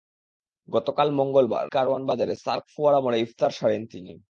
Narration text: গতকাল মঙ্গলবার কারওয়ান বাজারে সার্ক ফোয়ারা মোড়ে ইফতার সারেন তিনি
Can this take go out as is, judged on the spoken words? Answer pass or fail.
pass